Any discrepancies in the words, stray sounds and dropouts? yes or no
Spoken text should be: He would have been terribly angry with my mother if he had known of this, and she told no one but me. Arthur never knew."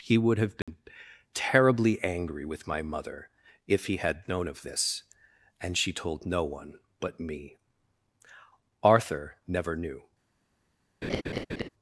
yes